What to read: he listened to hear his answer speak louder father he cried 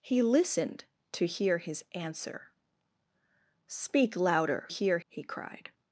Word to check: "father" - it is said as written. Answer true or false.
false